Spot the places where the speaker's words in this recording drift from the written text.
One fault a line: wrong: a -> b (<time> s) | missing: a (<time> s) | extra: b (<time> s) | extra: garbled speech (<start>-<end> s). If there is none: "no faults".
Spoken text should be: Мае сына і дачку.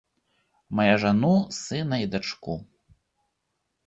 extra: жану (1.0 s)